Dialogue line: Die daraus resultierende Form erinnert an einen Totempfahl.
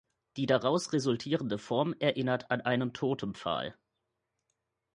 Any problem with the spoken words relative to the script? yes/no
no